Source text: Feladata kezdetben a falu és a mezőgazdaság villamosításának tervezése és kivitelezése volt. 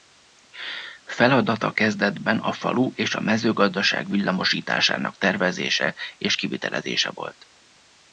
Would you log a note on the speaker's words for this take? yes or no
no